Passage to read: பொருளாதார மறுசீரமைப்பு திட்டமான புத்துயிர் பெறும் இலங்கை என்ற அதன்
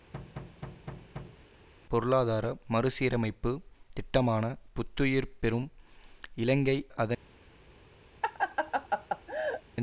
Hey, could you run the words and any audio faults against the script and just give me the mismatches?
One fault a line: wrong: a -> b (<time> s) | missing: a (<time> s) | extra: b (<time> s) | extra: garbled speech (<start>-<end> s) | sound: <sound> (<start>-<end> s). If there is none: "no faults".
sound: thud (0.1-1.5 s)
missing: என்ற (6.8 s)
sound: laugh (8.2-9.6 s)